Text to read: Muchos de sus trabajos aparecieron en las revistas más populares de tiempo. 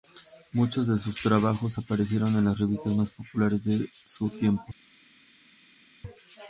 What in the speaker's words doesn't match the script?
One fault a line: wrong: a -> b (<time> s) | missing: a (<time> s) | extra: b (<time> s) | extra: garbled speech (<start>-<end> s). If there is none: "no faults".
extra: su (4.1 s)